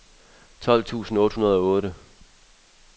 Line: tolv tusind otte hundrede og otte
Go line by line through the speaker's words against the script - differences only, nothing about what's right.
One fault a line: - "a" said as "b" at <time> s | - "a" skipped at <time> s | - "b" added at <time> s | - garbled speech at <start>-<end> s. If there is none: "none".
none